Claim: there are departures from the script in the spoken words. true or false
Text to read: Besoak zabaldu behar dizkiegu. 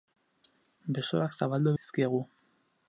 true